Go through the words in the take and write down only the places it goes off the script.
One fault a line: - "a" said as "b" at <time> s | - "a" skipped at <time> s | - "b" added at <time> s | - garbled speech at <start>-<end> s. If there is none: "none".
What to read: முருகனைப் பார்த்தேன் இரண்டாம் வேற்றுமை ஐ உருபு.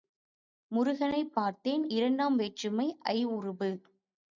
none